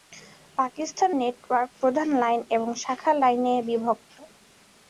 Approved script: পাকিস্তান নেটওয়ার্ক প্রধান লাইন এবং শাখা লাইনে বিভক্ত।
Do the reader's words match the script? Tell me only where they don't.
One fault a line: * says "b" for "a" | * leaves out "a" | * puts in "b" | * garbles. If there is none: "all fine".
all fine